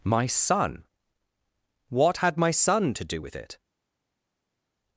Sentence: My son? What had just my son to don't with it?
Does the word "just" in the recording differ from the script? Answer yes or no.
yes